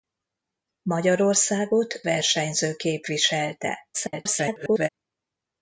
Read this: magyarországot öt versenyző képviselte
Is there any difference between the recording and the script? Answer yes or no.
yes